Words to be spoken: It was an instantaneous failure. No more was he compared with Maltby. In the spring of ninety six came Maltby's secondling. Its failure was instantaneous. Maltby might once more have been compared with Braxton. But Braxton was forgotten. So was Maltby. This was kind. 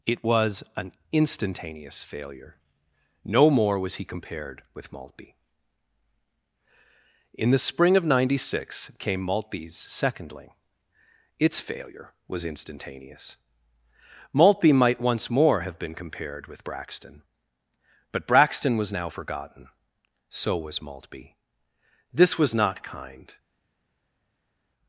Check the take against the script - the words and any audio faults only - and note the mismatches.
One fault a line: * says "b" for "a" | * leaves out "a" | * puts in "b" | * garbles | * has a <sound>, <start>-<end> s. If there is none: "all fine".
* puts in "now"
* puts in "not"